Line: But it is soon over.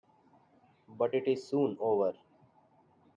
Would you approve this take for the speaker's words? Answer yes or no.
yes